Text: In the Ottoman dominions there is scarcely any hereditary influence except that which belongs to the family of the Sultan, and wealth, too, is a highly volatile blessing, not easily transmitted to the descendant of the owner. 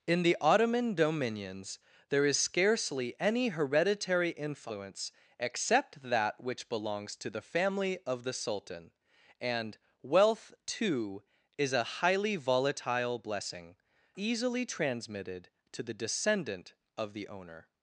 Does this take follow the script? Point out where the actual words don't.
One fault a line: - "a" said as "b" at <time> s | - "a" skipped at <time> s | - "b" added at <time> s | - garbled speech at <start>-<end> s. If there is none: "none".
- "not" skipped at 13.8 s